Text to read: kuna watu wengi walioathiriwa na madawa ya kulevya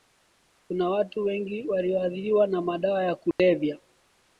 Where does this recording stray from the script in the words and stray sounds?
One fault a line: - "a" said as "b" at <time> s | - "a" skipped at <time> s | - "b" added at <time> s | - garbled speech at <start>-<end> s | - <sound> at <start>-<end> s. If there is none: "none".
- dropout at 3.3-3.4 s